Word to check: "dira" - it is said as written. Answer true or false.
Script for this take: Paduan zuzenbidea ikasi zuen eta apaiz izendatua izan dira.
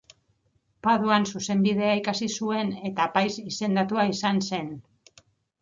false